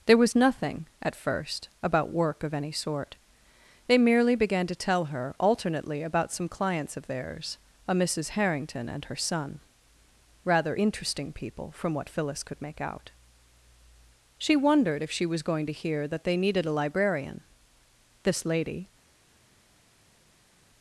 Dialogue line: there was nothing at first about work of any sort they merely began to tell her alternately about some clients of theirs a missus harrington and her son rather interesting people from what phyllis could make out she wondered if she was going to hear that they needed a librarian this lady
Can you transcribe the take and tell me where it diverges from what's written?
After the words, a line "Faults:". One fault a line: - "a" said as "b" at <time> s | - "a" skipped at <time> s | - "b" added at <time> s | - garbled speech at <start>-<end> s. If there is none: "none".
there was nothing at first about work of any sort they merely began to tell her alternately about some clients of theirs a missus harrington and her son rather interesting people from what phyllis could make out she wondered if she was going to hear that they needed a librarian this lady
Faults:
none